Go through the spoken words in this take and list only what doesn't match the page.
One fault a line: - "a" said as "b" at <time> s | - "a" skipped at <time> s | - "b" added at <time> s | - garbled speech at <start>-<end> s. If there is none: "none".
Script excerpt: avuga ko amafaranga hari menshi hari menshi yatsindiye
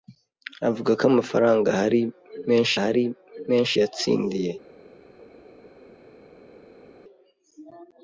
none